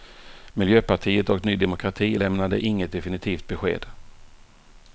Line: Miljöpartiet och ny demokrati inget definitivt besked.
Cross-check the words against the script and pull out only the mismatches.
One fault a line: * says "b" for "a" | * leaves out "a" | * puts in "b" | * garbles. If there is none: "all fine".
* puts in "lämnade"